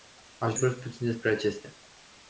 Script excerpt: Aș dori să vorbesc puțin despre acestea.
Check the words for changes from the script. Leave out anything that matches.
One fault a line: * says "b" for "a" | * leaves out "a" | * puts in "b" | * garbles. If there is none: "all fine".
* leaves out "dori"